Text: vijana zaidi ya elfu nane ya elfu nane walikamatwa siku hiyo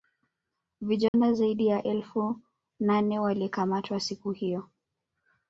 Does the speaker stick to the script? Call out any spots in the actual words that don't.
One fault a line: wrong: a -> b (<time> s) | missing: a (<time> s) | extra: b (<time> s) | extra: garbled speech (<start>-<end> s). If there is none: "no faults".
missing: ya elfu nane (3.2 s)